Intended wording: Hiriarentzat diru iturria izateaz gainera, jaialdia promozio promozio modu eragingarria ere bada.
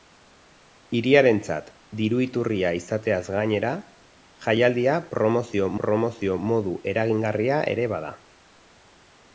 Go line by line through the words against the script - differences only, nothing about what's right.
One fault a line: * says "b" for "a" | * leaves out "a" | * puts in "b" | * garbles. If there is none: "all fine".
all fine